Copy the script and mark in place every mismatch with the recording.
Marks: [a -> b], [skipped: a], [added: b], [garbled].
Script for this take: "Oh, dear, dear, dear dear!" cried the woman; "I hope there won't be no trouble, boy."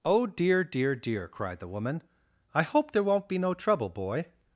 "Oh, dear, dear, dear [skipped: dear!"] cried the woman; "I hope there won't be no trouble, boy."